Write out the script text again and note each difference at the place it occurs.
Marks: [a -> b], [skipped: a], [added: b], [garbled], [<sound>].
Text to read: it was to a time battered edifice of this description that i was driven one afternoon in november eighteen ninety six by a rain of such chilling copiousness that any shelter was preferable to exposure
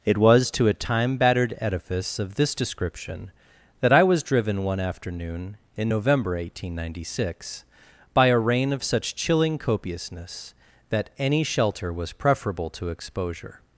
it was to a time battered edifice of this description that i was driven one afternoon in november eighteen ninety six by a rain of such chilling copiousness that any shelter was preferable to exposure